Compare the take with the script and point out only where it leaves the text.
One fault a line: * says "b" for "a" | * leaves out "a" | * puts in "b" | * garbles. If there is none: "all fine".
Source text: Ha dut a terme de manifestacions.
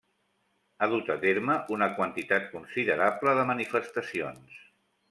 * puts in "una quantitat considerable"